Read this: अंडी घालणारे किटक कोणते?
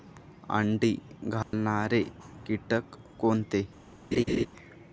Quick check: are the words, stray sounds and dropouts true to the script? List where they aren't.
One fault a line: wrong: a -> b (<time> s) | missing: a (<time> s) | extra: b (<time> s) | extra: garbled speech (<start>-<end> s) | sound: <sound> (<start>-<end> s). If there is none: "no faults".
sound: dropout (1.4-1.5 s)
sound: laugh (4.1-4.5 s)